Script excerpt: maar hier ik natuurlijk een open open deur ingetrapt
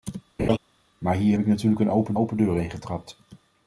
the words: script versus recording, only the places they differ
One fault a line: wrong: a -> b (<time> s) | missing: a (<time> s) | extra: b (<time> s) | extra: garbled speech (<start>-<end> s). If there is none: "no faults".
no faults